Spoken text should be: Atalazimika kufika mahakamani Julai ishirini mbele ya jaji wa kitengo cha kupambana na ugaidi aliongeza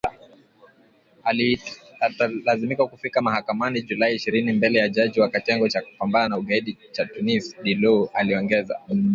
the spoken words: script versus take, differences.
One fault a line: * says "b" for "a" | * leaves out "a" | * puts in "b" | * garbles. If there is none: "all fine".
* puts in "cha Tunis Dilou"